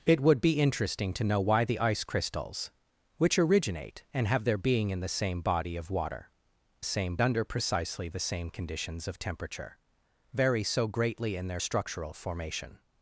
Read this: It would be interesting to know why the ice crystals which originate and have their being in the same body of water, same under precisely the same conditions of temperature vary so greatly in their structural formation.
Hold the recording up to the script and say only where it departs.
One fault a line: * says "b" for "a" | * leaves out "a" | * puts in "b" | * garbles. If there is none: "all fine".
all fine